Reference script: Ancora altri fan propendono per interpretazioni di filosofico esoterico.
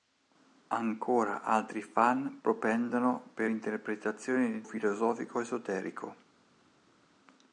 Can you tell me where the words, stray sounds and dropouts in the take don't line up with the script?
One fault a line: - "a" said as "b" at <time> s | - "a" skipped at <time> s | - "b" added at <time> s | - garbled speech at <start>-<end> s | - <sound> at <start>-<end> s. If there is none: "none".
none